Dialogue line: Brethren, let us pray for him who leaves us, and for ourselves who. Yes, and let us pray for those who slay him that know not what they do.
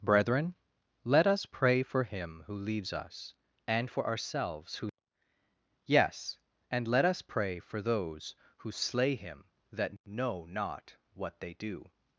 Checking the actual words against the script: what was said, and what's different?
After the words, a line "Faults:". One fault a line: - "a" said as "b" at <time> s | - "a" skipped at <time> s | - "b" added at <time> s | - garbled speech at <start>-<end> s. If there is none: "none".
Brethren, let us pray for him who leaves us, and for ourselves who. Yes, and let us pray for those who slay him that know not what they do.
Faults:
none